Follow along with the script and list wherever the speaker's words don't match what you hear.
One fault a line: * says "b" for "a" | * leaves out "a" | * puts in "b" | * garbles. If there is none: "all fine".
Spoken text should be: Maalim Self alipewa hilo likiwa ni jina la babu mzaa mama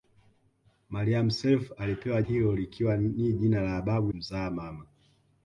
all fine